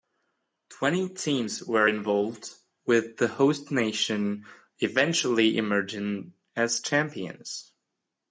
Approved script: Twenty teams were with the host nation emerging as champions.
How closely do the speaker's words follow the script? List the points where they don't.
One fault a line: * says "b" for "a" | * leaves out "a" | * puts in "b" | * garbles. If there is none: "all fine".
* puts in "involved"
* puts in "eventually"